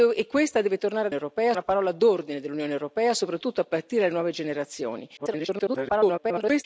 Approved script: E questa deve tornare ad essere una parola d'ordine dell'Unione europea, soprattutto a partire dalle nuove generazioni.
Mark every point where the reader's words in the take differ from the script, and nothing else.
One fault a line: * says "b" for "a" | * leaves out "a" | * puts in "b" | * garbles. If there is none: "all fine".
* says "europea" for "essere"
* garbles